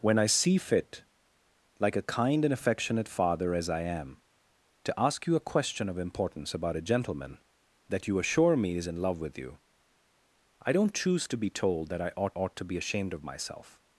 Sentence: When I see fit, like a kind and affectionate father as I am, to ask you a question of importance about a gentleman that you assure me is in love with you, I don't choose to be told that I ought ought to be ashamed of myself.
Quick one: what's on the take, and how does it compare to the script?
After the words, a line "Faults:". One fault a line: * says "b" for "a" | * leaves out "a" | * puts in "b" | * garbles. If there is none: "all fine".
When I see fit, like a kind and affectionate father as I am, to ask you a question of importance about a gentleman that you assure me is in love with you, I don't choose to be told that I ought ought to be ashamed of myself.
Faults:
all fine